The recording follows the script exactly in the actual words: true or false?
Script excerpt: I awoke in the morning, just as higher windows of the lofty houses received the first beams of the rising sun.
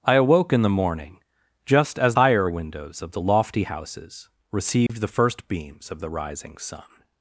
true